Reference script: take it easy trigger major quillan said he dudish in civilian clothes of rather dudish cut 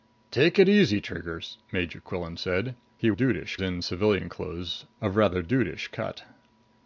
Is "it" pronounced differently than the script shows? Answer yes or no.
no